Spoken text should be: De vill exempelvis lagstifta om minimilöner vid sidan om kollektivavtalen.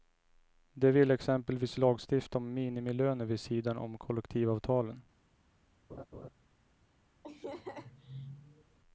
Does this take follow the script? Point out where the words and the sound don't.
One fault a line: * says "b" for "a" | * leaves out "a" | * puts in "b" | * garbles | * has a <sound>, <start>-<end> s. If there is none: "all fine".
* has a laugh, 5.9-6.3 s
* has a laugh, 7.2-8.8 s